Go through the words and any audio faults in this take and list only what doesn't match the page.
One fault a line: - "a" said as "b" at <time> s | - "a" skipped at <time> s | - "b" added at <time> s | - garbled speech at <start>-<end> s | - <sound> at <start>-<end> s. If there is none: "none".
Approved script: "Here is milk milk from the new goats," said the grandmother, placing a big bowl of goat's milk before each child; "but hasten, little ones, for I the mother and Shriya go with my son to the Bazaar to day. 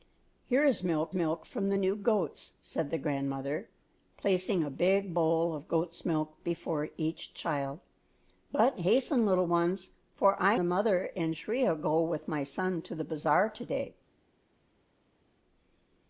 none